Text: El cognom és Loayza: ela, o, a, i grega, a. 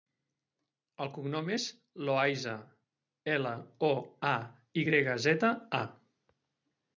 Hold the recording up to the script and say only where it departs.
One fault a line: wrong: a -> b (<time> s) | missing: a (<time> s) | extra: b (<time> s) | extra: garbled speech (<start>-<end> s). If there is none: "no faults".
extra: zeta (5.3 s)